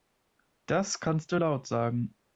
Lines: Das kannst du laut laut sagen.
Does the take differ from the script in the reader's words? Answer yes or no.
yes